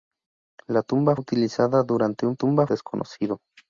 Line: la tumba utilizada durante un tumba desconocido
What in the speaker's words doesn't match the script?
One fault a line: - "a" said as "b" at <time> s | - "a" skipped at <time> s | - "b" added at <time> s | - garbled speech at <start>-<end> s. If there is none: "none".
none